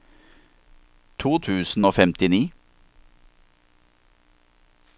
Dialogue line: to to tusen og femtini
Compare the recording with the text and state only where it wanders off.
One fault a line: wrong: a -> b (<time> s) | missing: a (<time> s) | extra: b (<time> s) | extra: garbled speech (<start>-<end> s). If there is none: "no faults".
missing: to (1.4 s)